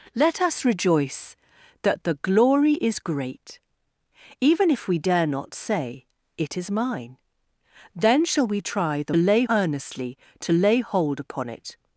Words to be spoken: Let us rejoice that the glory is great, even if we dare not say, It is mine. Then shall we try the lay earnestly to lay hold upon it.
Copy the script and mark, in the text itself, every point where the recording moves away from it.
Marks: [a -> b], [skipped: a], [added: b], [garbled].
Let us rejoice that the glory is great, even if we dare not say, It is mine. Then shall we try the lay earnestly to lay hold upon it.